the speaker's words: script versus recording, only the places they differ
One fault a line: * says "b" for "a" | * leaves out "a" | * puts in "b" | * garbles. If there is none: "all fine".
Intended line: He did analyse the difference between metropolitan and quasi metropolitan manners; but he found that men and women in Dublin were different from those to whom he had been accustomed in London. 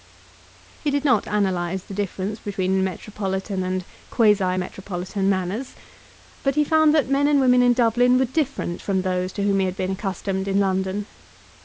* puts in "not"